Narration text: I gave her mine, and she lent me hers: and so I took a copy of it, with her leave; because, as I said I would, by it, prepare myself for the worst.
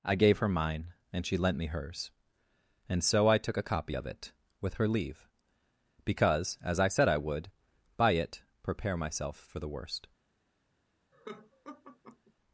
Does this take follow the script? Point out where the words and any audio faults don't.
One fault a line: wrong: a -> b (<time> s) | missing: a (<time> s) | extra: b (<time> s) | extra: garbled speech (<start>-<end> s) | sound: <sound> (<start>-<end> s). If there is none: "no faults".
sound: laugh (11.1-12.3 s)